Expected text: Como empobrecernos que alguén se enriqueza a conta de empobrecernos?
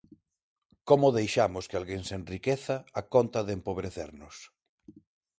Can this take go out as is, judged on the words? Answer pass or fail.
fail